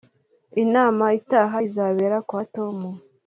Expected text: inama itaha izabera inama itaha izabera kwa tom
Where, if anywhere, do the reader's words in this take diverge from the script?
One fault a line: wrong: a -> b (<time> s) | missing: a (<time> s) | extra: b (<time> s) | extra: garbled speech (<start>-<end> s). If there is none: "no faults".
missing: inama itaha izabera (2.2 s)